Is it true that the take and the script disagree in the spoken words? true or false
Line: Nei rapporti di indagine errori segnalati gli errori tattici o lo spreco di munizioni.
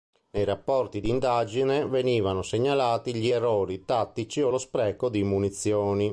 true